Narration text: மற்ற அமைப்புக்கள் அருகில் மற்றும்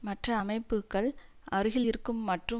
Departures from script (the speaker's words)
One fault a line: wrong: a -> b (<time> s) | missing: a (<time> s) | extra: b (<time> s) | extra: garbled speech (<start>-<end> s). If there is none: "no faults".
extra: இருக்கும் (1.8 s)